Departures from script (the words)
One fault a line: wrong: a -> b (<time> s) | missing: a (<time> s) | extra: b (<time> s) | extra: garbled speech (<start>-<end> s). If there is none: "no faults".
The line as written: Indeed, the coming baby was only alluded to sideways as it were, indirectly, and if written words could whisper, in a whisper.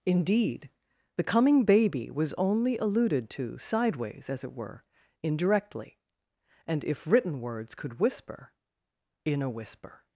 no faults